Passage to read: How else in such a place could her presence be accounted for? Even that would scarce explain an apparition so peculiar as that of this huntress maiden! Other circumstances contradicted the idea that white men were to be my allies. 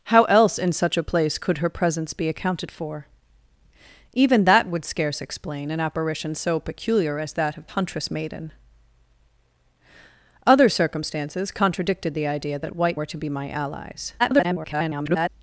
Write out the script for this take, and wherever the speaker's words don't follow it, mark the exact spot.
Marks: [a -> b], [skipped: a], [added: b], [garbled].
How else in such a place could her presence be accounted for? Even that would scarce explain an apparition so peculiar as that of [skipped: this] huntress maiden! Other circumstances contradicted the idea that white [skipped: men] were to be my allies. [garbled]